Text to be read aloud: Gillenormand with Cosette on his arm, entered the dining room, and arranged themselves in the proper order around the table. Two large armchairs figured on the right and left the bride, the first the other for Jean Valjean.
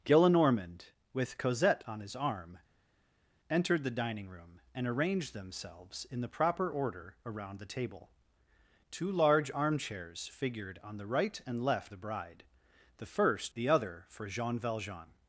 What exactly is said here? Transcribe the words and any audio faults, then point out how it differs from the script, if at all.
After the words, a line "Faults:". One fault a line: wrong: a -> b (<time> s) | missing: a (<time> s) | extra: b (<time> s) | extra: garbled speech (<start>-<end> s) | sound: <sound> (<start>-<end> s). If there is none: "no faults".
Gillenormand with Cosette on his arm, entered the dining room, and arranged themselves in the proper order around the table. Two large armchairs figured on the right and left the bride, the first the other for Jean Valjean.
Faults:
no faults